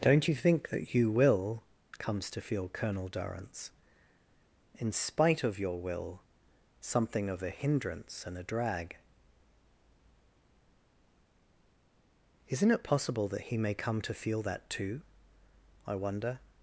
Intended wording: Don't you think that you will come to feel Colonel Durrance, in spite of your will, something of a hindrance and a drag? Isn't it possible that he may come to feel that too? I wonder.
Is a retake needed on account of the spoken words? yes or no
yes